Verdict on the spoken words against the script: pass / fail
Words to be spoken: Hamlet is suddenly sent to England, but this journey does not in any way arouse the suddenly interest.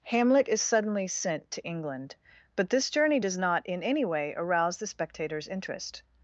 fail